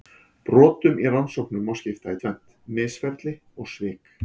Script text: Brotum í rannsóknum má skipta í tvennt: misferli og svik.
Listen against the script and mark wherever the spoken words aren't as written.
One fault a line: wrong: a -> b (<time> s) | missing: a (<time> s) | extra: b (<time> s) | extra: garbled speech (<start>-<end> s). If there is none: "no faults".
no faults